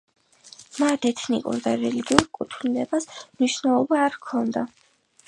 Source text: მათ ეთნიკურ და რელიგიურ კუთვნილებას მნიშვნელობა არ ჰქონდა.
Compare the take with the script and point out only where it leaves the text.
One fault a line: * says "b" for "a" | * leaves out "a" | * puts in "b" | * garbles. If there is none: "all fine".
all fine